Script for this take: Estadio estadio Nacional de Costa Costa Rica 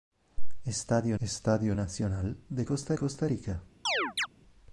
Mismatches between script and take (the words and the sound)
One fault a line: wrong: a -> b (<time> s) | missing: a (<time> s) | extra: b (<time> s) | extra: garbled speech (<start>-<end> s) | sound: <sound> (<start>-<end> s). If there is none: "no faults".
sound: chirp (3.9-4.3 s)